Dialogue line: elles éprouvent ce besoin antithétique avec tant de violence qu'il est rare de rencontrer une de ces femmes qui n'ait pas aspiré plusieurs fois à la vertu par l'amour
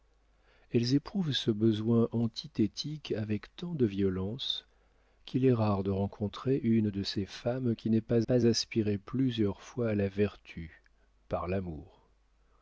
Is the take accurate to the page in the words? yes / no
no